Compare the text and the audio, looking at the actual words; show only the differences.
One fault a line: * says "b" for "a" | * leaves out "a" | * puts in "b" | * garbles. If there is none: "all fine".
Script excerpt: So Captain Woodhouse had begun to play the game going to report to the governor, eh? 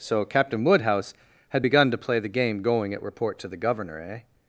* says "at" for "to"